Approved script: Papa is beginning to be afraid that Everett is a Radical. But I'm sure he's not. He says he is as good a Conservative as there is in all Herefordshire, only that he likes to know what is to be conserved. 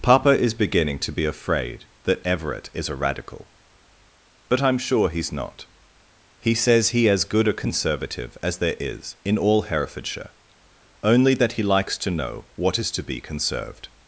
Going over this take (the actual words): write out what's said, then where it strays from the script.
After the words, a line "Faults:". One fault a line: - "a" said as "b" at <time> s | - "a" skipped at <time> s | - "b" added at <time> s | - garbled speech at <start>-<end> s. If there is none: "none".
Papa is beginning to be afraid that Everett is a Radical. But I'm sure he's not. He says he as good a Conservative as there is in all Herefordshire, only that he likes to know what is to be conserved.
Faults:
- "is" skipped at 7.1 s